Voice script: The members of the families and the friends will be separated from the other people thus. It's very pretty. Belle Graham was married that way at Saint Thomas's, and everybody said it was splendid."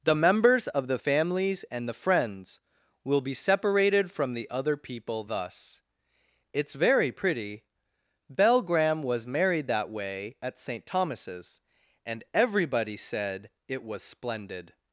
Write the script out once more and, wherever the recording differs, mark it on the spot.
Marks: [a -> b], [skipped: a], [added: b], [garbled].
The members of the families and the friends will be separated from the other people thus. It's very pretty. Belle Graham was married that way at Saint Thomas's, and everybody said it was splendid."